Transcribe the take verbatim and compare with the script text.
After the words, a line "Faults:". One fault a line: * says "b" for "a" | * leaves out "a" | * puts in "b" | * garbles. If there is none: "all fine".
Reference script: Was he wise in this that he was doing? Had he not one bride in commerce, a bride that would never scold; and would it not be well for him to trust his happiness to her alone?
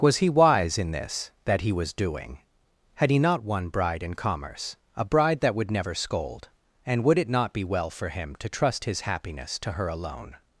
Was he wise in this that he was doing? Had he not one bride in commerce, a bride that would never scold; and would it not be well for him to trust his happiness to her alone?
Faults:
all fine